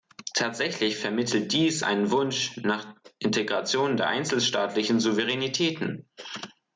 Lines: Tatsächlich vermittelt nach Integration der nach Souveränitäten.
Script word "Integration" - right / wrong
right